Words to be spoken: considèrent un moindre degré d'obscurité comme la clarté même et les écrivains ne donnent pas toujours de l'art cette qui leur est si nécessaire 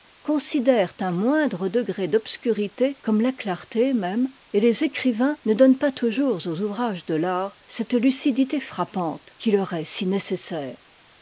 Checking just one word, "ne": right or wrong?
right